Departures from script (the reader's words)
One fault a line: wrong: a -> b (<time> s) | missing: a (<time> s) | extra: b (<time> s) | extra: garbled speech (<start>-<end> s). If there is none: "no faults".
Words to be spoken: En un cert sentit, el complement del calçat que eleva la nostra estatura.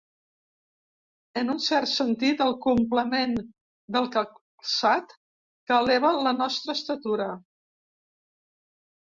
no faults